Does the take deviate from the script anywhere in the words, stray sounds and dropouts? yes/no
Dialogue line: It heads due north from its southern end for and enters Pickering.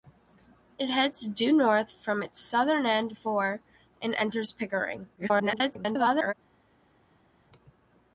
yes